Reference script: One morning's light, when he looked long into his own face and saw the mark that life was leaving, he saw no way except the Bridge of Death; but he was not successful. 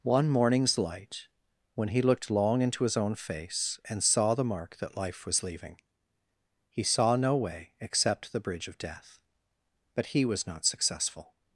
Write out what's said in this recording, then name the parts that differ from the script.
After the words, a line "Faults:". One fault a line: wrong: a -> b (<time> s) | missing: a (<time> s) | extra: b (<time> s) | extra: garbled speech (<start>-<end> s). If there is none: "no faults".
One morning's light, when he looked long into his own face and saw the mark that life was leaving, he saw no way except the Bridge of Death; but he was not successful.
Faults:
no faults